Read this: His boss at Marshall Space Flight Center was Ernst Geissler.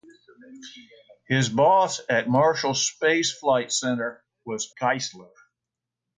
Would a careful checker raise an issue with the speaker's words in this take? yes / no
yes